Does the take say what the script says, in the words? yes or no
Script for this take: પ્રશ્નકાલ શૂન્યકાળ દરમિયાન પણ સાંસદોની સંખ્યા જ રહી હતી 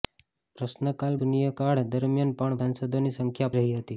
yes